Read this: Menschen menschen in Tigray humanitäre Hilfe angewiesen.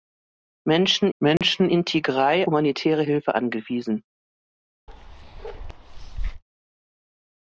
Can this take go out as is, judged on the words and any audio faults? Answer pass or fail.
fail